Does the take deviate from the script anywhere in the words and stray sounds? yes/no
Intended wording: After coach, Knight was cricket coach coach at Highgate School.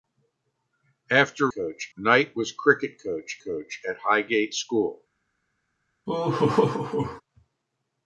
yes